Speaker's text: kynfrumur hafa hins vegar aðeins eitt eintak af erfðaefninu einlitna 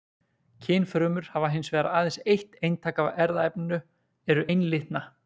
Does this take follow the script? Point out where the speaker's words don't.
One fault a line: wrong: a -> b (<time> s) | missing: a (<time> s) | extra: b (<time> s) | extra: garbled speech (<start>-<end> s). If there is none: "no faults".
extra: eru (4.3 s)